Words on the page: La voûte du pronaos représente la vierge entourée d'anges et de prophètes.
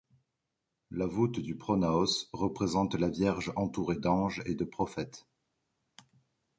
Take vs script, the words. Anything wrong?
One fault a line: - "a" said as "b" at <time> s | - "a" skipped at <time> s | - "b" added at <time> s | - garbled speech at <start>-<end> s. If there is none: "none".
none